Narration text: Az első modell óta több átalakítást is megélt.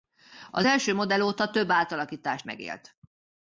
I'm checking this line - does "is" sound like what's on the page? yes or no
no